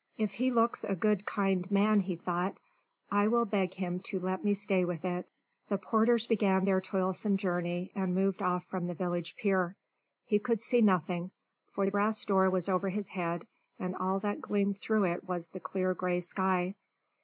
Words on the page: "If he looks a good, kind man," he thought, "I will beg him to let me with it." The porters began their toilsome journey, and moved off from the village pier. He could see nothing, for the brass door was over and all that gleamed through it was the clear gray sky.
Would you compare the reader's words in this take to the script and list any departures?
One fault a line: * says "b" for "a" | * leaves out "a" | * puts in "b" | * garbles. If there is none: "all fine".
* puts in "stay"
* puts in "his head"